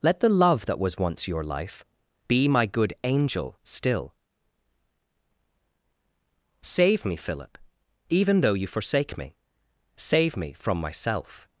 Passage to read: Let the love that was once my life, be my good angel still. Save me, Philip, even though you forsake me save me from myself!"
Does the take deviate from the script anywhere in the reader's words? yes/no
yes